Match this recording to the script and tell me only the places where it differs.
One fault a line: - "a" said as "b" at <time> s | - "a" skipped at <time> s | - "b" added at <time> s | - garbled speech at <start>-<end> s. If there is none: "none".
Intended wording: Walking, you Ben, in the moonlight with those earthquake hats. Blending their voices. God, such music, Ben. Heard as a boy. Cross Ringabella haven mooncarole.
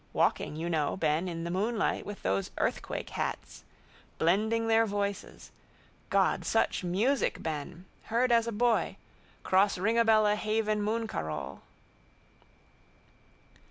- "know" added at 0.7 s